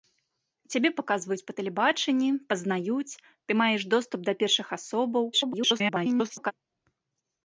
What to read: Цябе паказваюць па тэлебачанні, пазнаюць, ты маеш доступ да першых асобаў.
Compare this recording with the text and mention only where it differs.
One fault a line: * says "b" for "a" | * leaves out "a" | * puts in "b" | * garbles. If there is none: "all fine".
* garbles